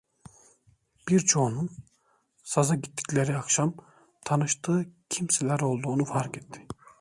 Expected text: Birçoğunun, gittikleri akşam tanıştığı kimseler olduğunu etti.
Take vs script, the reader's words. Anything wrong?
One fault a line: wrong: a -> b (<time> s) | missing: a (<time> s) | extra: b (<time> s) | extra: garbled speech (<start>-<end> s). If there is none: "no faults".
extra: saza (2.4 s)
extra: fark (6.0 s)